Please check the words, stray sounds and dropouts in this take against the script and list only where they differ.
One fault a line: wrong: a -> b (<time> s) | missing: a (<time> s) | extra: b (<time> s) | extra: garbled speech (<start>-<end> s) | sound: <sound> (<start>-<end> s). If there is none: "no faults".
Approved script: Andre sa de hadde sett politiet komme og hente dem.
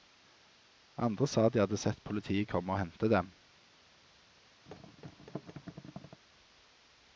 sound: thud (4.7-6.2 s)